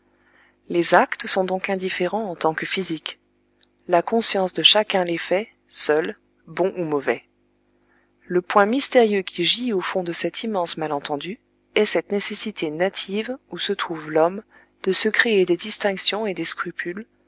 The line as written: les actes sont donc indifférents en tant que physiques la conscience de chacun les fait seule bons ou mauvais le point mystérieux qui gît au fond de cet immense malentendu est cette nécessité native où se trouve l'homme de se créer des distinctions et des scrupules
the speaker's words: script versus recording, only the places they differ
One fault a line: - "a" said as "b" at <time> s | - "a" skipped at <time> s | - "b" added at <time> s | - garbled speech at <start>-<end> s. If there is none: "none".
none